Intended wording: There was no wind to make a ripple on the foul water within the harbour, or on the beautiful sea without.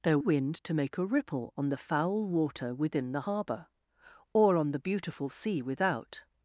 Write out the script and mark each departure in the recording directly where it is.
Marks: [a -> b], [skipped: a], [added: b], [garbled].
There [skipped: was no] wind to make a ripple on the foul water within the harbour, or on the beautiful sea without.